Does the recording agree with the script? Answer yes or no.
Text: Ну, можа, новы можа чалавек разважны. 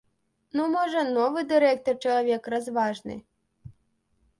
no